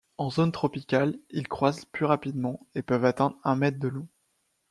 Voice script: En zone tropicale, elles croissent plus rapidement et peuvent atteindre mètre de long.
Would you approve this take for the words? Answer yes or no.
no